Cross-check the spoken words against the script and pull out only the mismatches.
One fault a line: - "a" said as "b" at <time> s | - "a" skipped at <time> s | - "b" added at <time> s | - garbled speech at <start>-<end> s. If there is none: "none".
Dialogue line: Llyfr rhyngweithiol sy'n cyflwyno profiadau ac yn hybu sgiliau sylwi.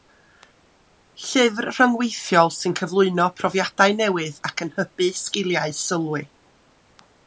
- "newydd" added at 4.0 s